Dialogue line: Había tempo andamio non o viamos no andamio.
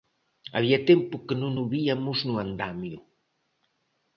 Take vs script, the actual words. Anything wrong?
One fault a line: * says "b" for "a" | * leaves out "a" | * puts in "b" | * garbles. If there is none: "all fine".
* says "que" for "andamio"